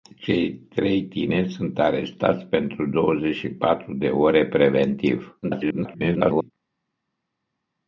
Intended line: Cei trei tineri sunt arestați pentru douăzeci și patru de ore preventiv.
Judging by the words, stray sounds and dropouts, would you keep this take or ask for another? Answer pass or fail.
fail